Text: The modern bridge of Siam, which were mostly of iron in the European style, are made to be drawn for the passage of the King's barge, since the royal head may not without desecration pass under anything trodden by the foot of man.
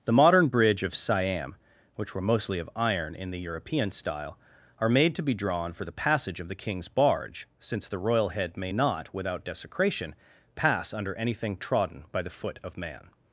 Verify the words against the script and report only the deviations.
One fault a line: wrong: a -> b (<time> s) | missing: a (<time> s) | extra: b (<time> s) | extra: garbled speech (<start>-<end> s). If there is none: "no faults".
no faults